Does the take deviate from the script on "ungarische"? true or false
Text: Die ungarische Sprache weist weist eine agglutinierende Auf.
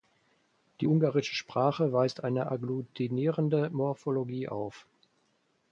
false